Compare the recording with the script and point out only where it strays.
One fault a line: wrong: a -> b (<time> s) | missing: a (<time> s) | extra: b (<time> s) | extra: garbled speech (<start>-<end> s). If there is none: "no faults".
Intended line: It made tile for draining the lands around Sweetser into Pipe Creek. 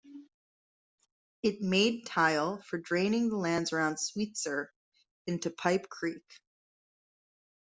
no faults